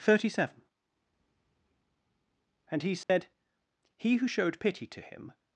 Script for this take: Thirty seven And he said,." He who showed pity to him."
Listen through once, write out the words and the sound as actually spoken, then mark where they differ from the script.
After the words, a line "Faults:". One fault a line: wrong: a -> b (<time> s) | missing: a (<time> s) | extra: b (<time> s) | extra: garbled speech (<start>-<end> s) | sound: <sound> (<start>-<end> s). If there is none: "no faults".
Thirty seven And he said,." He who showed pity to him."
Faults:
sound: dropout (3.0-3.1 s)